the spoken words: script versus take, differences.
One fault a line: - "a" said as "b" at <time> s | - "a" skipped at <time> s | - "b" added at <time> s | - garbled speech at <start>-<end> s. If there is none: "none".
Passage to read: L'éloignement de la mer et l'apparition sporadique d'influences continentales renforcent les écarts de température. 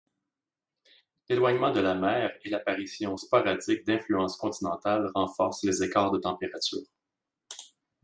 none